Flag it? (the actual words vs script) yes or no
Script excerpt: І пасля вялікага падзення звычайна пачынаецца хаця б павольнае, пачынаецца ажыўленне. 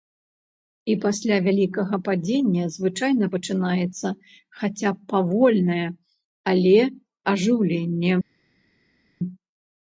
yes